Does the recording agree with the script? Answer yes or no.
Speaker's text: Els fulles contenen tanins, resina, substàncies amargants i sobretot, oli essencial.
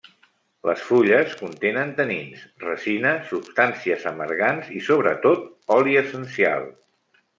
no